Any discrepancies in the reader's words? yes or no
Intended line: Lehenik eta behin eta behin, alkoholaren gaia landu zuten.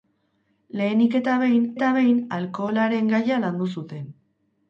no